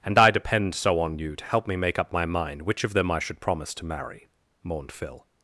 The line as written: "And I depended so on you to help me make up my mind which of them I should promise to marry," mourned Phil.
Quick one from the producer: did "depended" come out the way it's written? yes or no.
no